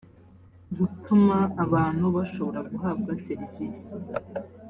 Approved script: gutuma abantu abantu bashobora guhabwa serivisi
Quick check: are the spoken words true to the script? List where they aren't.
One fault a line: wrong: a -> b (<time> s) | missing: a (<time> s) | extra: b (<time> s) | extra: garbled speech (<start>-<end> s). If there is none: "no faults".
missing: abantu (2.0 s)